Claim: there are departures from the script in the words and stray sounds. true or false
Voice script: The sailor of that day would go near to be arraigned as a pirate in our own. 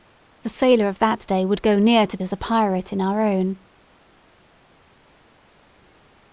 true